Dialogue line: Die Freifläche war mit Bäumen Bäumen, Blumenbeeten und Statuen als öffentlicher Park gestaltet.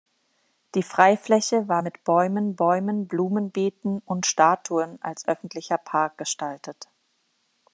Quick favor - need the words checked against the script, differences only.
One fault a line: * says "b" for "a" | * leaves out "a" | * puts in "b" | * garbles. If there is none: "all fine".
all fine